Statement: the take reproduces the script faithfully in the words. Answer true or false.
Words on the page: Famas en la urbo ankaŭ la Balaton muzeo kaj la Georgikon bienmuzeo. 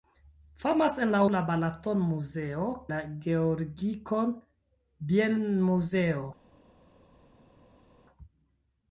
false